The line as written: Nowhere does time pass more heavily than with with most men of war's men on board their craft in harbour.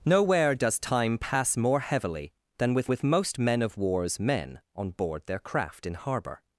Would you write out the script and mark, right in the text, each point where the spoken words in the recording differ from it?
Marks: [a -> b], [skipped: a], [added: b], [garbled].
Nowhere does time pass more heavily than with with most men of war's men on board their craft in harbour.